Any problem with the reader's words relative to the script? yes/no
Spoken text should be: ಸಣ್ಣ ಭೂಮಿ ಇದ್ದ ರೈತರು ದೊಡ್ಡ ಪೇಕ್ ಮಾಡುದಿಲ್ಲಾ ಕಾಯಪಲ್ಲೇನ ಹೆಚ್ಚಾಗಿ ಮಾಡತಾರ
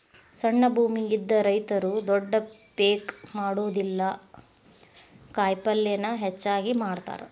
no